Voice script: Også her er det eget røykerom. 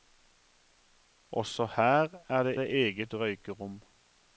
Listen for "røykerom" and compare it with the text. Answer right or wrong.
right